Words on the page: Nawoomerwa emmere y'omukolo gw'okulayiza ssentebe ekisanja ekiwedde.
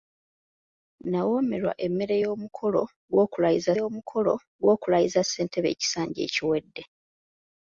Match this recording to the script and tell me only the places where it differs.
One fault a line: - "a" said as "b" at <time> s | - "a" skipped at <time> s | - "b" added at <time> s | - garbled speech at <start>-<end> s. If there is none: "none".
- "y'omukolo gw'okulayiza" added at 3.8 s